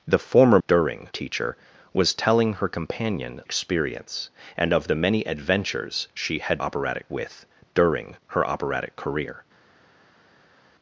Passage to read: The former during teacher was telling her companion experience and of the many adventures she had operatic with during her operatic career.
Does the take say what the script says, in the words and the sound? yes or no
yes